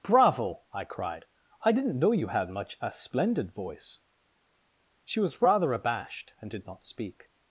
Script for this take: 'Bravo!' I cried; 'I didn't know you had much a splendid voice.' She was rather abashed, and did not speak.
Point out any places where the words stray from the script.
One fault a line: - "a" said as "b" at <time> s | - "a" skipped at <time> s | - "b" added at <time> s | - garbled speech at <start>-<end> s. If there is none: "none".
none